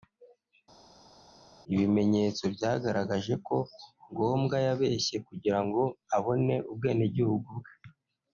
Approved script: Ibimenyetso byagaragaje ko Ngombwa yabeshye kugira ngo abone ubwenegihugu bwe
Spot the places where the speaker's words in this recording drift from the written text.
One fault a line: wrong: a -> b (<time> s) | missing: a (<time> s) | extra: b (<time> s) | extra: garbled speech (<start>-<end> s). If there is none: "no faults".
no faults